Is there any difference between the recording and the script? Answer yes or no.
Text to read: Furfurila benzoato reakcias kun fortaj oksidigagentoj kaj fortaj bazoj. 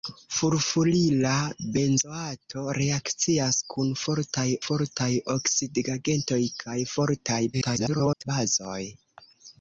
yes